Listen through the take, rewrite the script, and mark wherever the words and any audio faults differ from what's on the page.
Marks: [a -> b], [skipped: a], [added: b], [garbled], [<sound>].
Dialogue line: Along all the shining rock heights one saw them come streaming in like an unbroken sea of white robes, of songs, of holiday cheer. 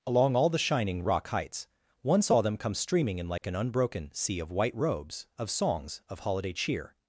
Along all the shining rock heights one saw them come streaming in like [dropout] an unbroken sea of white robes, of songs, of holiday cheer.